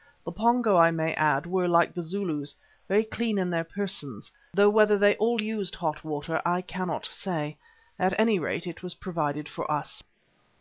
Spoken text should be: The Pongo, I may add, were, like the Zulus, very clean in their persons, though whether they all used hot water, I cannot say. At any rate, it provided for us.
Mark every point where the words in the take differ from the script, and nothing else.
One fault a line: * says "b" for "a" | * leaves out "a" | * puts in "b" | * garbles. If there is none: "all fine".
* puts in "was"